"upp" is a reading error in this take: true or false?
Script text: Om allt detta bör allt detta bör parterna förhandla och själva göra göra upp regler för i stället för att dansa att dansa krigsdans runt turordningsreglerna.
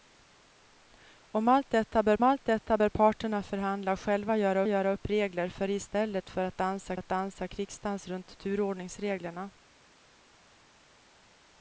false